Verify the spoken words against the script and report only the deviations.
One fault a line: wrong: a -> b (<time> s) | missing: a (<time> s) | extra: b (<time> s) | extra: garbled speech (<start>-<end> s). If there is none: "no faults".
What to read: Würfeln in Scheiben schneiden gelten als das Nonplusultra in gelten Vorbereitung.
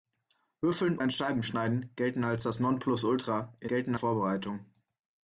no faults